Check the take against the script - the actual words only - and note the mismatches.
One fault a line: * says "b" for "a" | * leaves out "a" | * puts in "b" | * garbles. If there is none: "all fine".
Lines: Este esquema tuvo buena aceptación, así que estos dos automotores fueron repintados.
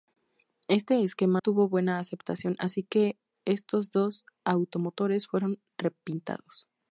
all fine